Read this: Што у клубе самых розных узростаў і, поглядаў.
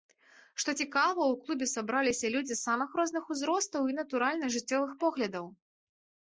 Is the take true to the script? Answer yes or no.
no